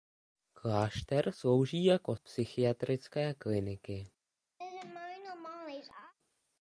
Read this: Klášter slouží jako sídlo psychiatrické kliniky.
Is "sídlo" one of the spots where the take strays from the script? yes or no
yes